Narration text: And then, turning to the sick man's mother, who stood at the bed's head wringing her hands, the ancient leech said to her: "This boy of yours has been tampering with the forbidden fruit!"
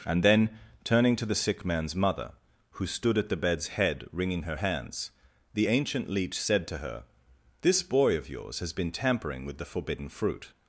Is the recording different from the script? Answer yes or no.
no